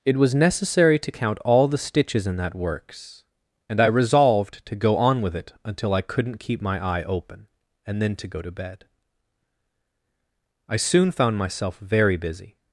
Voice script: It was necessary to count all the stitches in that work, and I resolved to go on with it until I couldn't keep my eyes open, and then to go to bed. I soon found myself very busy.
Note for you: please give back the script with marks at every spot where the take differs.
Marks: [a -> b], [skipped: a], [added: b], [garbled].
It was necessary to count all the stitches in that [work, -> works] and I resolved to go on with it until I couldn't keep my [eyes -> eye] open, and then to go to bed. I soon found myself very busy.